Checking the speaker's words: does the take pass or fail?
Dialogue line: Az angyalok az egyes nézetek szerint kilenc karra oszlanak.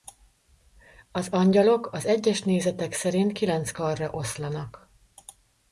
pass